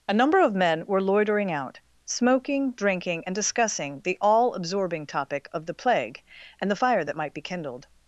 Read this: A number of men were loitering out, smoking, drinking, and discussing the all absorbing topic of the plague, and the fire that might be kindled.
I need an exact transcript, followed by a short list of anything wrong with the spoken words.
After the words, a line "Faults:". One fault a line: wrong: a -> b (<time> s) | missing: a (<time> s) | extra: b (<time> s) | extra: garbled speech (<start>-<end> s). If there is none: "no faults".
A number of men were loitering out, smoking, drinking, and discussing the all absorbing topic of the plague, and the fire that might be kindled.
Faults:
no faults